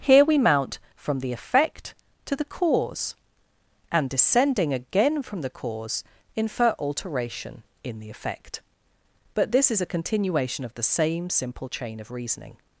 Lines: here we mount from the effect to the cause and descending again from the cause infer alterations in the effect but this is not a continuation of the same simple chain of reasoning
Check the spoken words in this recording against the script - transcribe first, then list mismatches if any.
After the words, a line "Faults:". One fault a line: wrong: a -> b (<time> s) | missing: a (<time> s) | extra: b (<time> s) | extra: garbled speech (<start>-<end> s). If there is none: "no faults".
here we mount from the effect to the cause and descending again from the cause infer alteration in the effect but this is a continuation of the same simple chain of reasoning
Faults:
wrong: alterations -> alteration (6.8 s)
missing: not (9.8 s)